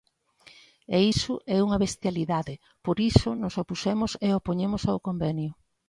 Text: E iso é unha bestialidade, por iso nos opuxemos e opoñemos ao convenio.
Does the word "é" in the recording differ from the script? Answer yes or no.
no